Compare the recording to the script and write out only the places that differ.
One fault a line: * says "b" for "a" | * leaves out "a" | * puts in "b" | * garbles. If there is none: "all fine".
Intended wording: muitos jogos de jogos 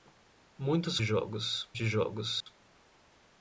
all fine